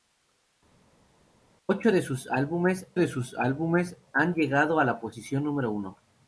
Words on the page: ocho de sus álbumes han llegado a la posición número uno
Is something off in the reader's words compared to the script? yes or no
yes